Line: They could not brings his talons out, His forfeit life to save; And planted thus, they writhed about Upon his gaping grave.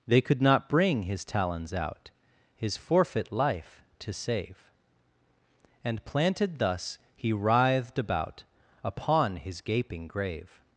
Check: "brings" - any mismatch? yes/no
yes